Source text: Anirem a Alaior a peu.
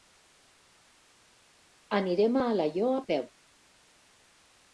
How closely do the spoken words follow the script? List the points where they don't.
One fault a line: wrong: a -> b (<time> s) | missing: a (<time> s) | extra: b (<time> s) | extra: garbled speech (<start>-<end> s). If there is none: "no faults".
no faults